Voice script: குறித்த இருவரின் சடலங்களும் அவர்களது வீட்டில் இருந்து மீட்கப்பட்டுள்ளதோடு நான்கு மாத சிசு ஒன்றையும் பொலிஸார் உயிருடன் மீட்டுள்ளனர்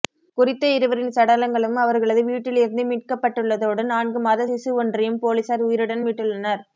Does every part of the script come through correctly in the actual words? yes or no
yes